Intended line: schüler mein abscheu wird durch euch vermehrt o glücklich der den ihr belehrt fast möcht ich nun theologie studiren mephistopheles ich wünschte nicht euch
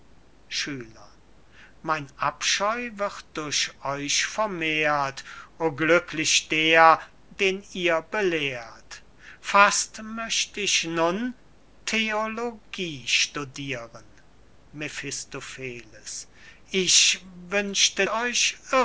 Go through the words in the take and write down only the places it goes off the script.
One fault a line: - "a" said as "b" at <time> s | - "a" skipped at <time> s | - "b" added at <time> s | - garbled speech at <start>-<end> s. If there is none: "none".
- "nicht" skipped at 18.1 s